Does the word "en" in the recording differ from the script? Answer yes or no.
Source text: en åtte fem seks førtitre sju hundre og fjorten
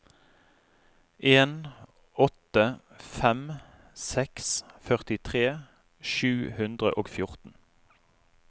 no